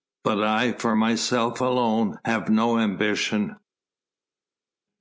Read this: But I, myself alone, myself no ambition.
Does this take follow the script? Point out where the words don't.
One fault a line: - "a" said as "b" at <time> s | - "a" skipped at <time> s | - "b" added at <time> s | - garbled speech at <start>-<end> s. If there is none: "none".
- "for" added at 0.7 s
- "myself" said as "have" at 2.3 s